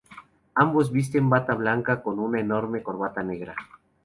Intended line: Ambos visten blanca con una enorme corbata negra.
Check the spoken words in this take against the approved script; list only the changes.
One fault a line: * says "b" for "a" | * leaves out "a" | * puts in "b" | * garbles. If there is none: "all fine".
* puts in "bata"